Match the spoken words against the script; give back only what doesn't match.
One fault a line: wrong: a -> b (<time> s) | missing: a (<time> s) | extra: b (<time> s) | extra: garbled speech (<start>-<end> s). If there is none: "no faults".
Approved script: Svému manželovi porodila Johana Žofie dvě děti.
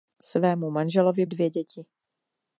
missing: porodila Johana Žofie (1.2 s)